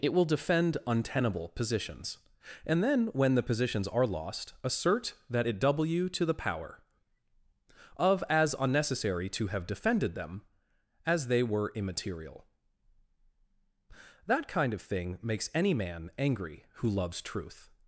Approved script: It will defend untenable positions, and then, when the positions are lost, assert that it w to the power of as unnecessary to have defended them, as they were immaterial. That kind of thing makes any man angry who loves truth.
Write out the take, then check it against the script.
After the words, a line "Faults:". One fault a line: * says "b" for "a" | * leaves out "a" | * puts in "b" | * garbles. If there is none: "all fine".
It will defend untenable positions, and then, when the positions are lost, assert that it w to the power of as unnecessary to have defended them, as they were immaterial. That kind of thing makes any man angry who loves truth.
Faults:
all fine